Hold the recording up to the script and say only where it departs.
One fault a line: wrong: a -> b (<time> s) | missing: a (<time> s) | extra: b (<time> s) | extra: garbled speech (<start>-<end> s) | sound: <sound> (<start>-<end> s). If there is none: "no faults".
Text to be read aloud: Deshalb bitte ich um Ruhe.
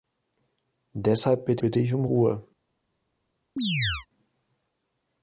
extra: bitte (1.6 s)
sound: chirp (3.6-4.1 s)